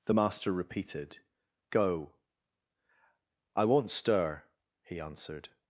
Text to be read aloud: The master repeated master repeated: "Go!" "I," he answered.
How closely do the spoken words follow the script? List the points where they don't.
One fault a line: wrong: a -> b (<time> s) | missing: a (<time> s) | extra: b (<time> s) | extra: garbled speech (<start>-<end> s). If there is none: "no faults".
wrong: master repeated Go I -> Go I won't stir (1.7 s)